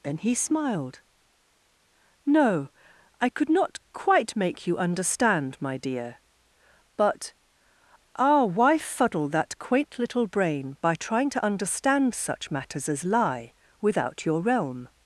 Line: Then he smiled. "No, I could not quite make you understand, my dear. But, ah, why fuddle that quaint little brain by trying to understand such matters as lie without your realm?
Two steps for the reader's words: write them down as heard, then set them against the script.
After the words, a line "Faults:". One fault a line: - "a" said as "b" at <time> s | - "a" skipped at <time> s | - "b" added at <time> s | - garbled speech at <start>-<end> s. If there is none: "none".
Then he smiled. "No, I could not quite make you understand, my dear. But, ah, why fuddle that quaint little brain by trying to understand such matters as lie without your realm?
Faults:
none